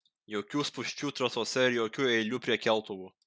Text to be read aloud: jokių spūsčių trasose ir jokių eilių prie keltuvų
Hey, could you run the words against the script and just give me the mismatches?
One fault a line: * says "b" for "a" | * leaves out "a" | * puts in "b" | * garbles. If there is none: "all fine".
all fine